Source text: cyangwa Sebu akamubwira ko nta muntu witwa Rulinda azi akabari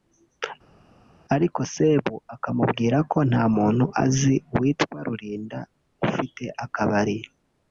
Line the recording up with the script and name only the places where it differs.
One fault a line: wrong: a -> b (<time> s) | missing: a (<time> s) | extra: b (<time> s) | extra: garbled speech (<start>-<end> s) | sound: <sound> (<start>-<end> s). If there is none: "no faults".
wrong: cyangwa -> ariko (1.3 s)
extra: azi (4.0 s)
wrong: azi -> ufite (6.1 s)